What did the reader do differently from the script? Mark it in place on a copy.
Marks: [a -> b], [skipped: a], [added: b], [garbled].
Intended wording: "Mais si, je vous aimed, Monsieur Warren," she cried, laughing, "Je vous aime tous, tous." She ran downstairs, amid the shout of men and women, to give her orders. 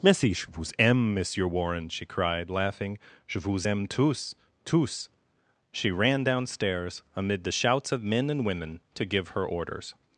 "Mais si, je vous [aimed, -> aime] Monsieur Warren," she cried, laughing, "Je vous aime tous, tous." She ran downstairs, amid the [shout -> shouts] of men and women, to give her orders.